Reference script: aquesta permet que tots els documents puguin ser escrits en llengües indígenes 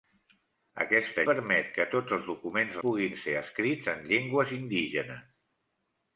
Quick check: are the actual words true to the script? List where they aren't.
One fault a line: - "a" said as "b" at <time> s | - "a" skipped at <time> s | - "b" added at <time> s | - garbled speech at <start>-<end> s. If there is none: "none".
none